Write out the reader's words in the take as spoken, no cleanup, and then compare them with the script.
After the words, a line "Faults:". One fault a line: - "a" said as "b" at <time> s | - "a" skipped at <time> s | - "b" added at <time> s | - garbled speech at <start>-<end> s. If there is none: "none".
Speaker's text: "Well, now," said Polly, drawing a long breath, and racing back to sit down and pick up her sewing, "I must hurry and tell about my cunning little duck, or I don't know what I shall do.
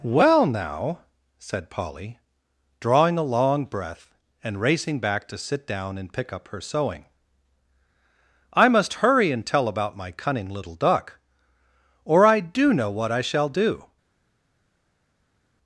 "Well, now," said Polly, drawing a long breath, and racing back to sit down and pick up her sewing, "I must hurry and tell about my cunning little duck, or I do know what I shall do.
Faults:
- "don't" said as "do" at 12.4 s